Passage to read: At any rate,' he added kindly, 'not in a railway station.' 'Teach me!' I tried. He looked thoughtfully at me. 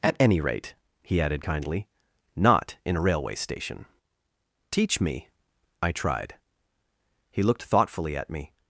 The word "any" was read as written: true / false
true